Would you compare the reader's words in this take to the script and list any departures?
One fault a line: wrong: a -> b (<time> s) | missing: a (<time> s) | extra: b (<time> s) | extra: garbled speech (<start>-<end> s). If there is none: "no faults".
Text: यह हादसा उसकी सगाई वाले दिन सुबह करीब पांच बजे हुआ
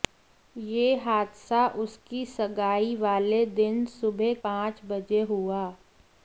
missing: करीब (4.3 s)